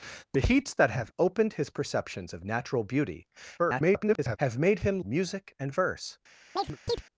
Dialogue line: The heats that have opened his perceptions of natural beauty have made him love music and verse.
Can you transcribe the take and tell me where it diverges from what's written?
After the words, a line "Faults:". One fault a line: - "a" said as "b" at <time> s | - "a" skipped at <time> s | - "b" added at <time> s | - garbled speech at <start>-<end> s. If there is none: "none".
The heats that have opened his perceptions of natural beauty [garbled] have made him music and verse.
Faults:
- garbled speech at 3.6-4.4 s
- "love" skipped at 5.0 s